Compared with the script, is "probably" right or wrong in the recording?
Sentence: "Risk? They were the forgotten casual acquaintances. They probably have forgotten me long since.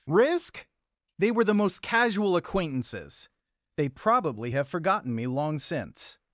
right